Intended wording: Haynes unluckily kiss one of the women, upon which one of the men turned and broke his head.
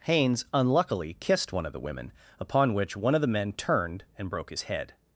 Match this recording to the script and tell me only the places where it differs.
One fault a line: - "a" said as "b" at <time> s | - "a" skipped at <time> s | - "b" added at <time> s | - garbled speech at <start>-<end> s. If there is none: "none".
- "kiss" said as "kissed" at 1.2 s